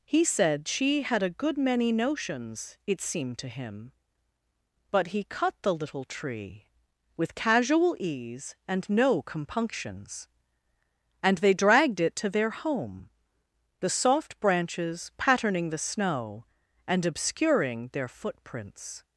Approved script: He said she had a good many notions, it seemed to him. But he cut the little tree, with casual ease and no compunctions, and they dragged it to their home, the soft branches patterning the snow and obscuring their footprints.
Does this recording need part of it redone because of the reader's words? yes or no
no